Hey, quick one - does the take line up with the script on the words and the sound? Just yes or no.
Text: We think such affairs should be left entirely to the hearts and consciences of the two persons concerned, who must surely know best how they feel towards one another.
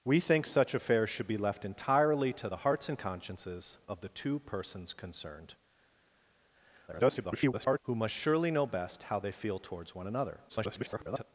no